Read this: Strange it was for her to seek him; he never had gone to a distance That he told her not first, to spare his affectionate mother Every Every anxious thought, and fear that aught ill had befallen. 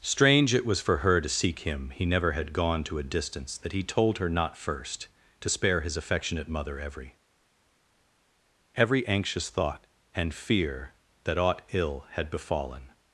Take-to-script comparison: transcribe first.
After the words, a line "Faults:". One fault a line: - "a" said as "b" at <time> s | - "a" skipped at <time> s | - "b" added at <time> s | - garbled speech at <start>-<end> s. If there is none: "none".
Strange it was for her to seek him; he never had gone to a distance That he told her not first, to spare his affectionate mother Every Every anxious thought, and fear that aught ill had befallen.
Faults:
none